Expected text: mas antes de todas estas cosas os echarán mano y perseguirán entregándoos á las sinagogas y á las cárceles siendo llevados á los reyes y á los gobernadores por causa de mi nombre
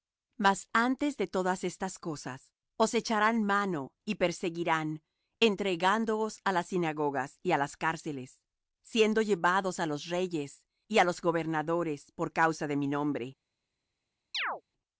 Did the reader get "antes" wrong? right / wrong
right